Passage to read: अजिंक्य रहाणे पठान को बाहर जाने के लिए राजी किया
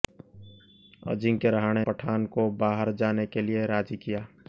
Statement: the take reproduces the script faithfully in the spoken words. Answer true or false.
true